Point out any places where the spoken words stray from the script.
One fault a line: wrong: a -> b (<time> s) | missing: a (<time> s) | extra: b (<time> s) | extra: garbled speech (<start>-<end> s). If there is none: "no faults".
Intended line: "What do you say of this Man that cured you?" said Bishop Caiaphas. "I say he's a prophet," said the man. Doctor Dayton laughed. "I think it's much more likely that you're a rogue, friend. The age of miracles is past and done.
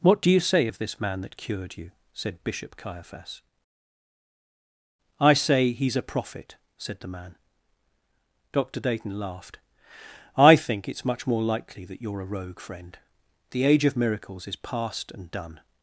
no faults